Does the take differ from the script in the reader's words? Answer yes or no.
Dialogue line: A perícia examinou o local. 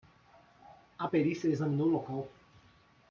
no